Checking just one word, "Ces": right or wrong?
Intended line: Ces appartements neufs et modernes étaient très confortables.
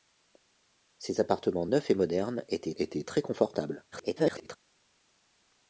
right